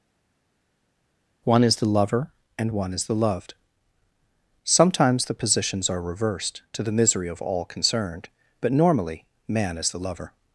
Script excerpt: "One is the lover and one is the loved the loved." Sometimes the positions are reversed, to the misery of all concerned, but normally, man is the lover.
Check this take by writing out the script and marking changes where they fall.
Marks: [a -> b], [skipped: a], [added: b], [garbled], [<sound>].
"One is the lover and one is the loved [skipped: the loved."] Sometimes the positions are reversed, to the misery of all concerned, but normally, man is the lover.